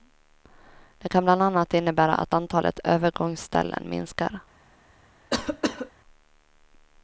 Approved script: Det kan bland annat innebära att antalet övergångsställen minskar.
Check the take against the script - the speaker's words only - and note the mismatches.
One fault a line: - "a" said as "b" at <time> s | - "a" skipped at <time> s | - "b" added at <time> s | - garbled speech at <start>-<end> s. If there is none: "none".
none